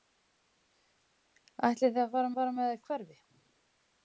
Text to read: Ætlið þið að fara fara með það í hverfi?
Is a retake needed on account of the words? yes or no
no